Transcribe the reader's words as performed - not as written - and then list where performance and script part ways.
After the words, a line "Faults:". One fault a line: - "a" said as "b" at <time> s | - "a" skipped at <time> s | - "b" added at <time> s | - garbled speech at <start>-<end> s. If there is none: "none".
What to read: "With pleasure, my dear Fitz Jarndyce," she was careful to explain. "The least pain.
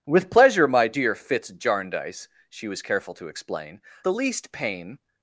"With pleasure, my dear Fitz Jarndyce," she was careful to explain. "The least pain.
Faults:
none